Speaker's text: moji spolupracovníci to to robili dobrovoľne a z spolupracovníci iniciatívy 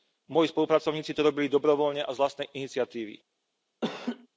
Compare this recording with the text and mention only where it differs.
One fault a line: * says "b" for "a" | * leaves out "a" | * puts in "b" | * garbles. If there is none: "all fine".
* leaves out "to"
* says "vlastnej" for "spolupracovníci"